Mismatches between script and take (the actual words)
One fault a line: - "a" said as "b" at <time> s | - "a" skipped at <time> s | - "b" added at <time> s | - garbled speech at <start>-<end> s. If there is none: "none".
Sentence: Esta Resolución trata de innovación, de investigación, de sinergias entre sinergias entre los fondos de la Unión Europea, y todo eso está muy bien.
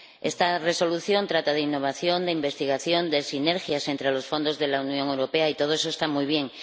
- "sinergias entre" skipped at 4.1 s